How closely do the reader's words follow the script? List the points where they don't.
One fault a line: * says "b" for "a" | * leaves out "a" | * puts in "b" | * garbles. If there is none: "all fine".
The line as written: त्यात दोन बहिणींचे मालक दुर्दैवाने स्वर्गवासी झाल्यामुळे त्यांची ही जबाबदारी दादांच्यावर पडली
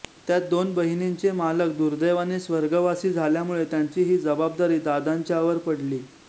all fine